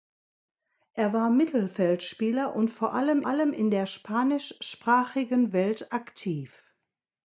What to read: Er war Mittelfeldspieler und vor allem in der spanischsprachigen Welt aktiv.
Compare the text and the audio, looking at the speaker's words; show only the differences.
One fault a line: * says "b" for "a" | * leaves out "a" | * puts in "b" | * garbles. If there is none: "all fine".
* puts in "allem"